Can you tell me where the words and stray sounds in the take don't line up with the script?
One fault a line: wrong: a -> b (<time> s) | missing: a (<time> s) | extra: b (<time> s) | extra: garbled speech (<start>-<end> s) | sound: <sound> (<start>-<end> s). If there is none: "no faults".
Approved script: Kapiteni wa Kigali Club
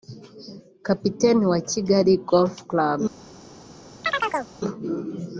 extra: Golf (2.3 s)
sound: chirp (4.0-4.5 s)